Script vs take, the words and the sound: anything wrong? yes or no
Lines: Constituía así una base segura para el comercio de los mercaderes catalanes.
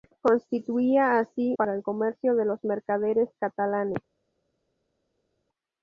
yes